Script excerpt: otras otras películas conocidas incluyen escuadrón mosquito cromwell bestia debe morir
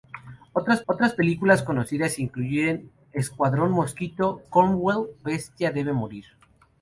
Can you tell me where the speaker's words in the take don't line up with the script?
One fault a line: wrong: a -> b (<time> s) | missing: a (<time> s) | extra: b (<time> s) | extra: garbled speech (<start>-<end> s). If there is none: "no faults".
no faults